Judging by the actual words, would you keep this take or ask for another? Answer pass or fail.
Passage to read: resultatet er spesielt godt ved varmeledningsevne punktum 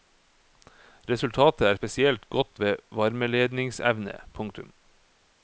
pass